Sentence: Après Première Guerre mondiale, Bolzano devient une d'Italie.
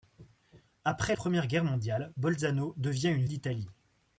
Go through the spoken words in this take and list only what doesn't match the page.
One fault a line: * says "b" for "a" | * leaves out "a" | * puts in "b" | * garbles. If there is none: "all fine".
all fine